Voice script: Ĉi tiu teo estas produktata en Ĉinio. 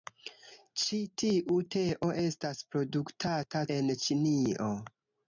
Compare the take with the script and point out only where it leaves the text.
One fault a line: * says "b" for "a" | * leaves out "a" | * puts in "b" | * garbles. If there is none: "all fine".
all fine